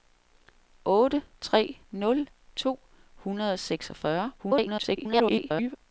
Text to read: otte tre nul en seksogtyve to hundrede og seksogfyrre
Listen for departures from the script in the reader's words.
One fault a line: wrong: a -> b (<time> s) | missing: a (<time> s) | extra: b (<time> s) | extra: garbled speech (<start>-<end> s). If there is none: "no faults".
missing: en seksogtyve (2.3 s)
extra: garbled speech (4.4-5.8 s)